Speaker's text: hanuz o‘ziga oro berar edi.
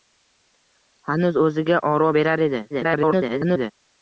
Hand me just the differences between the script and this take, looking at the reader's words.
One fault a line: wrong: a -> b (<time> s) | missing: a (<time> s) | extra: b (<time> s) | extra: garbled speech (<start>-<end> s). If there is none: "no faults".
extra: garbled speech (2.7-3.7 s)